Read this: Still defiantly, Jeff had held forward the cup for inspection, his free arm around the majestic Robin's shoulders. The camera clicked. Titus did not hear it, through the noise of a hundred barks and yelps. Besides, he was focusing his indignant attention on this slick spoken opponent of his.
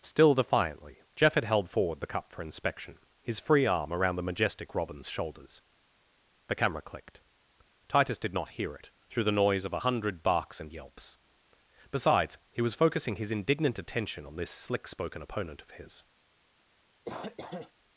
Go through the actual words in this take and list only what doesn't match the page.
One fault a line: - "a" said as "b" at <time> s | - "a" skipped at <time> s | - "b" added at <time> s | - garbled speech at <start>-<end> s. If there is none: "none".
none